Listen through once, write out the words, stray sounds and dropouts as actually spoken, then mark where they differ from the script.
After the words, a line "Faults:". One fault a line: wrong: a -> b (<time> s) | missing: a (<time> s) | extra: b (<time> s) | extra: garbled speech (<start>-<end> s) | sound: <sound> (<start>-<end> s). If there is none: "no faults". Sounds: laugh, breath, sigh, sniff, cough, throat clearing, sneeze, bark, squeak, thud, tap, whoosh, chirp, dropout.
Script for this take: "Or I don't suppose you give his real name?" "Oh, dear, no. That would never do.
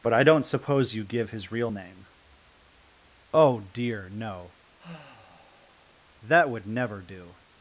"But I don't suppose you give his real name?" "Oh, dear, no. That would never do.
Faults:
wrong: Or -> But (0.0 s)
sound: sigh (4.8-6.0 s)